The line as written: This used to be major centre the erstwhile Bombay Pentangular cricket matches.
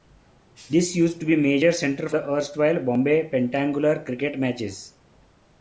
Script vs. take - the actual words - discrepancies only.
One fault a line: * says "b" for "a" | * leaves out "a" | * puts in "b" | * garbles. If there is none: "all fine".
all fine